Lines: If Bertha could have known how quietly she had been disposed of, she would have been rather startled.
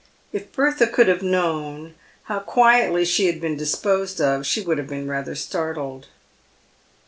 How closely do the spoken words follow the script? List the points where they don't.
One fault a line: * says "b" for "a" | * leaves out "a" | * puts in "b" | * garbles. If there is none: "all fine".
all fine